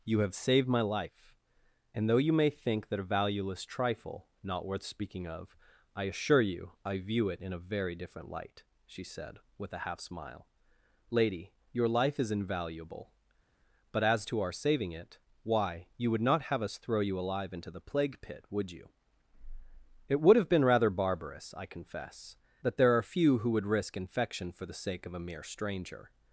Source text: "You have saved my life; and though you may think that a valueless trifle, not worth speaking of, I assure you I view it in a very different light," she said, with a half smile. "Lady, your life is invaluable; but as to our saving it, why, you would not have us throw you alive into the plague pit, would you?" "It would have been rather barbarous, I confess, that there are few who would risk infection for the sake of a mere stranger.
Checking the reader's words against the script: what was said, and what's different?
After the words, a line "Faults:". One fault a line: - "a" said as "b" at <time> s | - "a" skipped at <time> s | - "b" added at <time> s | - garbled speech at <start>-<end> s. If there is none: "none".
"You have saved my life; and though you may think that a valueless trifle, not worth speaking of, I assure you I view it in a very different light," she said, with a half smile. "Lady, your life is invaluable; but as to our saving it, why, you would not have us throw you alive into the plague pit, would you?" "It would have been rather barbarous, I confess, that there are few who would risk infection for the sake of a mere stranger.
Faults:
none